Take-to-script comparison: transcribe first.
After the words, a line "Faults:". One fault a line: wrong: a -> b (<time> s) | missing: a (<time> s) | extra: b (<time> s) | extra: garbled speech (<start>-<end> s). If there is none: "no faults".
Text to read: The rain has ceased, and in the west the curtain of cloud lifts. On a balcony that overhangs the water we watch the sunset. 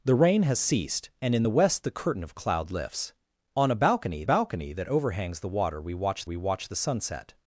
The rain has ceased, and in the west the curtain of cloud lifts. On a balcony balcony that overhangs the water we watch we watch the sunset.
Faults:
extra: balcony (4.2 s)
extra: we watch (6.2 s)